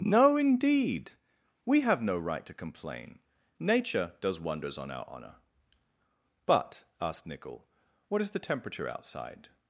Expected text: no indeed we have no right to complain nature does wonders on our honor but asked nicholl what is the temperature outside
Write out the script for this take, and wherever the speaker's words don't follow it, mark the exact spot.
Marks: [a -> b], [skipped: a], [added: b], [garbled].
no indeed we have no right to complain nature does wonders on our honor but asked nicholl what is the temperature outside